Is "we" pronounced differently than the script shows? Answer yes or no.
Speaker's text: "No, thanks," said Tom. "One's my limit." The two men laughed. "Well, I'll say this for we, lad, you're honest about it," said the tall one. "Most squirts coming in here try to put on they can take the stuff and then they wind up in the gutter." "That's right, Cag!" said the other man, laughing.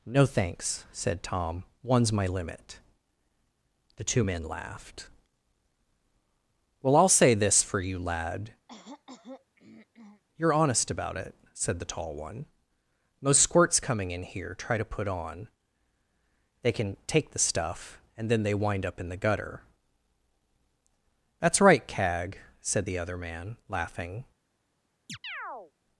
yes